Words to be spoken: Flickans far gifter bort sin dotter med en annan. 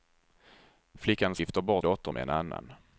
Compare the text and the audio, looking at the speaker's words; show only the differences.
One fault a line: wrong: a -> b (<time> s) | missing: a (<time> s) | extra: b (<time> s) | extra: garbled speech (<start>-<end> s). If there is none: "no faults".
missing: far (1.4 s)
missing: sin (1.9 s)